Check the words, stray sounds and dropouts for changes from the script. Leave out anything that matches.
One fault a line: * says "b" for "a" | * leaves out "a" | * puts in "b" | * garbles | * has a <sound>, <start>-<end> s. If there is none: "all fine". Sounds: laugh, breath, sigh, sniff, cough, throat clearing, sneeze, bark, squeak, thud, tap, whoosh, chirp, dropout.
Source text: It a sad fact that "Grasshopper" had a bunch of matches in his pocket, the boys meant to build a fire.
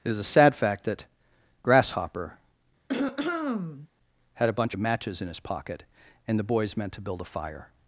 * puts in "is"
* has a throat clearing, 2.9-3.9 s
* puts in "and"